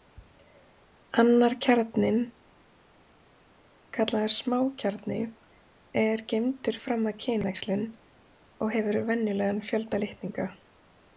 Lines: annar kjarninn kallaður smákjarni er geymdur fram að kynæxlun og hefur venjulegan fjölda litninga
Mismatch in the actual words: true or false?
false